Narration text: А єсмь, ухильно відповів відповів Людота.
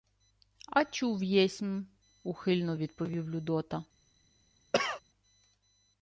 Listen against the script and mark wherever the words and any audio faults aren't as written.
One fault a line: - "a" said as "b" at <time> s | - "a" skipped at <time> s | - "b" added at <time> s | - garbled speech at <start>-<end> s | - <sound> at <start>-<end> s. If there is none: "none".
- "чув" added at 0.8 s
- "відповів" skipped at 3.3 s
- cough at 4.7-5.0 s